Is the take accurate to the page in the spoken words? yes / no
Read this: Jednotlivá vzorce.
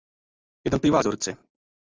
yes